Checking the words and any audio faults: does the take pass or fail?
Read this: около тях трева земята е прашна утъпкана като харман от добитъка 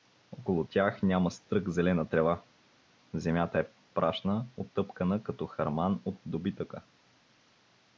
fail